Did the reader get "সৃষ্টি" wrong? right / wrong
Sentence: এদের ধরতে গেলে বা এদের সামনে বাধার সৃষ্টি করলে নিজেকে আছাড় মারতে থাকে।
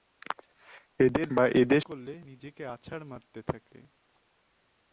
wrong